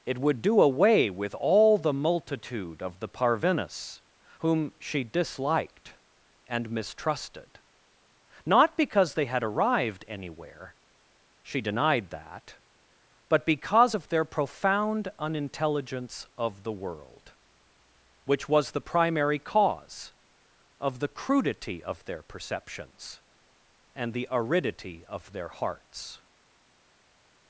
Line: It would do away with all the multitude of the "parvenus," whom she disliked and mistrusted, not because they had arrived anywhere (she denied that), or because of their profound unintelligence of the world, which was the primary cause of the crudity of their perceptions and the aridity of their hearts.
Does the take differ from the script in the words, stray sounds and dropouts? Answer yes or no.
yes